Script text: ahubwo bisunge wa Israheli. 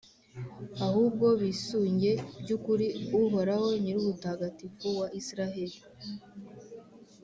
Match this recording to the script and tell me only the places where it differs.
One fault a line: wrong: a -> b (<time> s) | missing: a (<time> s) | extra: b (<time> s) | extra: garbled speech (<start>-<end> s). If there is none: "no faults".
extra: by'ukuri Uhoraho Nyirubutagatifu (2.4 s)